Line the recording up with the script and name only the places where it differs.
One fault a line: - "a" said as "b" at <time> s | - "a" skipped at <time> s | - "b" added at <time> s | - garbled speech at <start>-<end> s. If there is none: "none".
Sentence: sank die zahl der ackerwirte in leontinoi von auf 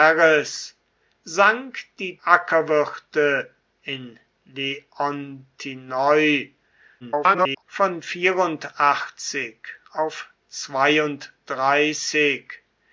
- "zahl der" skipped at 2.2 s
- garbled speech at 7.0-7.6 s